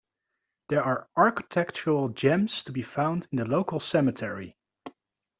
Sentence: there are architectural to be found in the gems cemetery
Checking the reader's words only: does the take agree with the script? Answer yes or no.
no